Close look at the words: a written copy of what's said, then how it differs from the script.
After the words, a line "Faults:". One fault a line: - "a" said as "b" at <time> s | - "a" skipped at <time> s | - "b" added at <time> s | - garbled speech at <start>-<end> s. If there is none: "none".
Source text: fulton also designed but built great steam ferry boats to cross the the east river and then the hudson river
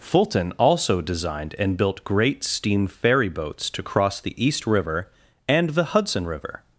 fulton also designed and built great steam ferry boats to cross the east river and the hudson river
Faults:
- "but" said as "and" at 1.6 s
- "the" skipped at 4.3 s
- "then" skipped at 5.7 s